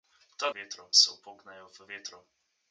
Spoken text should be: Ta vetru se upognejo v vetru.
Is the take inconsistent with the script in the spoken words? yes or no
no